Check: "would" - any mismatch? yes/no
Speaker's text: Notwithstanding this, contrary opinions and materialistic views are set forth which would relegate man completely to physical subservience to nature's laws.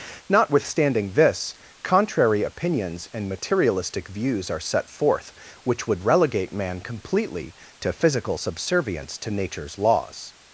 no